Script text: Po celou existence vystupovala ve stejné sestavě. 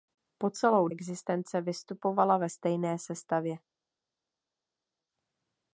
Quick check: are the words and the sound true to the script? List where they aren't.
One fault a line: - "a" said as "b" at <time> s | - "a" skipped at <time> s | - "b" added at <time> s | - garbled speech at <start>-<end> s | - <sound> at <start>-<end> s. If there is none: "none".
none